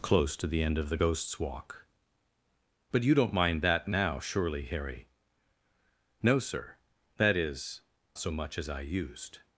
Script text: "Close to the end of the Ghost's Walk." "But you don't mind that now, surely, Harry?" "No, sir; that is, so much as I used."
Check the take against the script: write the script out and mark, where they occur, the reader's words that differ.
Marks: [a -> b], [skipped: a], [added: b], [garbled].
"Close to the end of the Ghost's Walk." "But you don't mind that now, surely, Harry?" "No, sir; that is, so much as I used."